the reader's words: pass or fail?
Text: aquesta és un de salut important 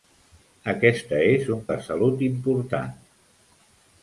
pass